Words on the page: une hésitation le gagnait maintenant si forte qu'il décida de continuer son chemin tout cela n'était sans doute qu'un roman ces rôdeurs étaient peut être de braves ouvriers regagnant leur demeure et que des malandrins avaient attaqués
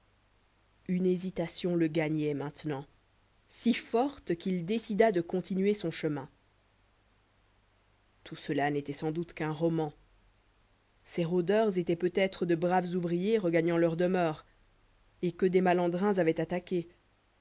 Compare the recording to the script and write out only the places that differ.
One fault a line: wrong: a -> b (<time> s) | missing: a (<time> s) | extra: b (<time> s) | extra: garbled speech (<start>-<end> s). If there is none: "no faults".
no faults